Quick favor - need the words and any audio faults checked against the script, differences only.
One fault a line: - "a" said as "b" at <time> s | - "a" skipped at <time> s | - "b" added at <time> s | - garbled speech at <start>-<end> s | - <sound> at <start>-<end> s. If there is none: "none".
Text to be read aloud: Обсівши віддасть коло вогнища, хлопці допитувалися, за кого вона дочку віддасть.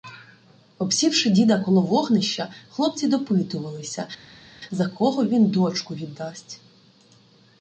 - "віддасть" said as "діда" at 1.3 s
- "вона" said as "він" at 5.3 s